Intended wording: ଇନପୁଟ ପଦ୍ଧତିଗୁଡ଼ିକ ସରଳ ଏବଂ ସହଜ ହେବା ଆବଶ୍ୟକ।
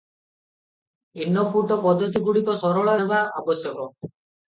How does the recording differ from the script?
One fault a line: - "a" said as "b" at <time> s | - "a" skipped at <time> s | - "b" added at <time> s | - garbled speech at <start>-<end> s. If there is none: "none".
- "ଏବଂ ସହଜ" skipped at 2.9 s